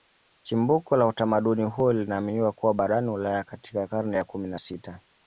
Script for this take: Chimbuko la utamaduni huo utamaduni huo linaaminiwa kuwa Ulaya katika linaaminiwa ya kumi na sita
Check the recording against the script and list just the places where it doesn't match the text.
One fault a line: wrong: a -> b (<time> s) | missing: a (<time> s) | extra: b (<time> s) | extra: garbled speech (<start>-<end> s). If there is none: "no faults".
missing: utamaduni huo (1.9 s)
extra: barani (2.7 s)
wrong: linaaminiwa -> karne (3.9 s)